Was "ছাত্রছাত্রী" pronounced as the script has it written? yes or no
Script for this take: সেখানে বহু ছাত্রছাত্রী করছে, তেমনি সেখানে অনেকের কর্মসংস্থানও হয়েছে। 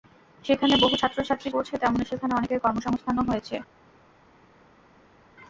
yes